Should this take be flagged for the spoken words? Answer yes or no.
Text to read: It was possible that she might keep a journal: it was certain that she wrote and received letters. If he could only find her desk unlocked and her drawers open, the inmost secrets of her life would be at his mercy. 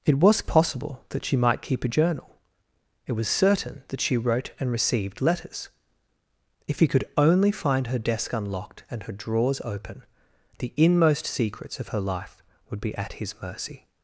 no